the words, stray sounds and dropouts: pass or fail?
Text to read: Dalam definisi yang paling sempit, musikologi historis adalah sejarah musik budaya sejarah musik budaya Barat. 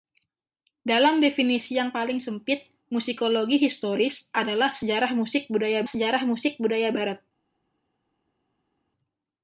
pass